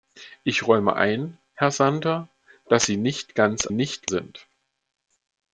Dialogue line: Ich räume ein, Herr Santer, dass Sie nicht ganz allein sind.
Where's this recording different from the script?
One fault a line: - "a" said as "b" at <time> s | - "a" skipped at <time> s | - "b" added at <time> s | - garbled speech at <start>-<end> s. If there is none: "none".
- "allein" said as "nicht" at 3.7 s